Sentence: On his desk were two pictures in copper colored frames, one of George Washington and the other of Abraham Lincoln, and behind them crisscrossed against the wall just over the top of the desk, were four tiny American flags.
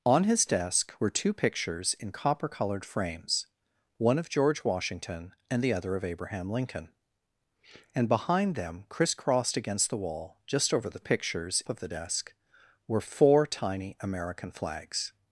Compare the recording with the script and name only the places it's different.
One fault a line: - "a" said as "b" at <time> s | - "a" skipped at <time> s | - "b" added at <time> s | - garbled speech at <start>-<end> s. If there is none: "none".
- "top" said as "pictures" at 11.0 s